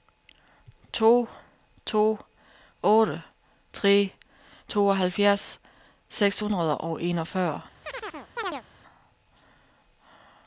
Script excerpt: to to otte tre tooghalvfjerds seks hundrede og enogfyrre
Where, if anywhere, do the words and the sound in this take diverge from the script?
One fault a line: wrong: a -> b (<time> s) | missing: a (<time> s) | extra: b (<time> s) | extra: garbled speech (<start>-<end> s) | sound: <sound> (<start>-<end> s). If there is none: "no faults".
sound: chirp (7.8-8.6 s)